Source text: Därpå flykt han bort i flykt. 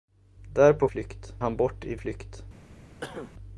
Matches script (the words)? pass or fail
pass